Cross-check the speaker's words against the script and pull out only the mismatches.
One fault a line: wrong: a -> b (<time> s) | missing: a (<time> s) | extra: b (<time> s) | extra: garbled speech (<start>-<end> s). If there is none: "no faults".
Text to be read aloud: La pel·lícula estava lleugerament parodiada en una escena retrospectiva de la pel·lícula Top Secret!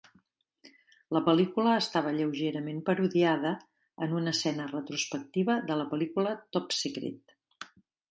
no faults